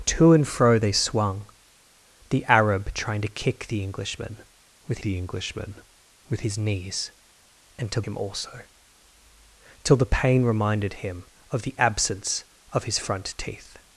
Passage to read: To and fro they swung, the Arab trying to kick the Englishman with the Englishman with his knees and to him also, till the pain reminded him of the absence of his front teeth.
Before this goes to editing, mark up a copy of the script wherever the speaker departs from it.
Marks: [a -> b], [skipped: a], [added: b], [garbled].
To and fro they swung, the Arab trying to kick the Englishman with the Englishman with his knees and to him also, till the pain reminded him of the absence of his front teeth.